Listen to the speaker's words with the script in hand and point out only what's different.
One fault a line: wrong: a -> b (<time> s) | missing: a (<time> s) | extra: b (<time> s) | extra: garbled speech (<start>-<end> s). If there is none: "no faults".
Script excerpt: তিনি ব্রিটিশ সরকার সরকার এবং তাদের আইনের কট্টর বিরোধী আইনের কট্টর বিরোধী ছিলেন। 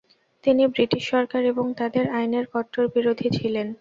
missing: সরকার (1.4 s)
missing: আইনের কট্টর বিরোধী (3.3 s)